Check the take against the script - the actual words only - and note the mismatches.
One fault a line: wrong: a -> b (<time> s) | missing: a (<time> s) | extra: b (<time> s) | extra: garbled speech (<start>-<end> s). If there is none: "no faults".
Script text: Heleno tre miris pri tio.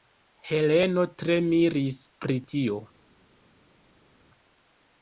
no faults